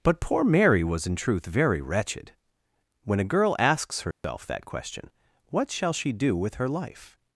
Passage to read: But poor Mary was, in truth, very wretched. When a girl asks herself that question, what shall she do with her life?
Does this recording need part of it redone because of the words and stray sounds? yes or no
yes